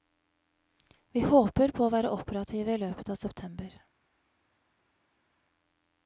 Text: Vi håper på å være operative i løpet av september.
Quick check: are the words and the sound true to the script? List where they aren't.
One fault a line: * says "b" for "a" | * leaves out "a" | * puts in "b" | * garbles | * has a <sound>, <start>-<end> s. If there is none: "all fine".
all fine